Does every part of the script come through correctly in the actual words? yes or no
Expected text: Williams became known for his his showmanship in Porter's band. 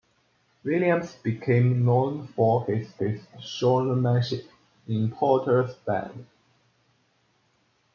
yes